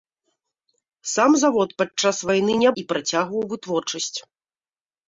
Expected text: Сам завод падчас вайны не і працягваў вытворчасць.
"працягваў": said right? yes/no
yes